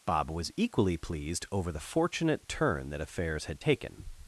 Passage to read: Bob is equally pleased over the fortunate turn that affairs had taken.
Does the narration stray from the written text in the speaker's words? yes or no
yes